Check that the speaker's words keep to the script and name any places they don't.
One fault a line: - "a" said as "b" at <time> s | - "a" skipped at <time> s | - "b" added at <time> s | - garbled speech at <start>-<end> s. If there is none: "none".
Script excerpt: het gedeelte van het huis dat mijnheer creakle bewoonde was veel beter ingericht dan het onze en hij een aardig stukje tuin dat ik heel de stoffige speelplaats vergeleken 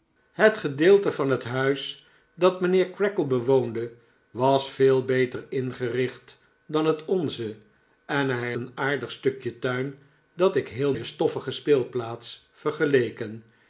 none